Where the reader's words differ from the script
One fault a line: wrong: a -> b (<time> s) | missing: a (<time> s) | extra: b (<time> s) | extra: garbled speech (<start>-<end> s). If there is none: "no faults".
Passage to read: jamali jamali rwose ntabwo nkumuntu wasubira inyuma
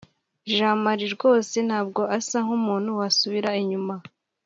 missing: jamali (1.1 s)
extra: asa (2.2 s)